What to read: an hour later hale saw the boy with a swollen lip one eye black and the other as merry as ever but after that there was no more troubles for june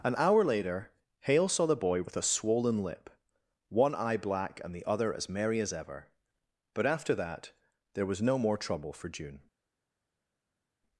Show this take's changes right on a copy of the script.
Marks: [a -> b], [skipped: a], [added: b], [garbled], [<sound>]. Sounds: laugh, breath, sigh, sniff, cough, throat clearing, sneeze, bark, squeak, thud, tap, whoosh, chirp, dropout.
an hour later hale saw the boy with a swollen lip one eye black and the other as merry as ever but after that there was no more [troubles -> trouble] for june